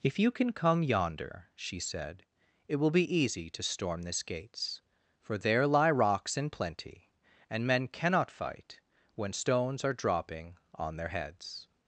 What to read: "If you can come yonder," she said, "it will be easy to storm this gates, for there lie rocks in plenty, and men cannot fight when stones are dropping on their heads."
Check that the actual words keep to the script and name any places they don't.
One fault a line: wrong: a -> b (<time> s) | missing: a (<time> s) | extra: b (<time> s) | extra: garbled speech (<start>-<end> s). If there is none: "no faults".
no faults